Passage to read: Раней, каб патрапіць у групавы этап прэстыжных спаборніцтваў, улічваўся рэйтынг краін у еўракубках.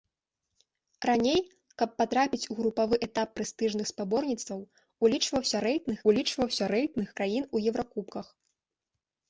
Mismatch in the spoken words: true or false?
true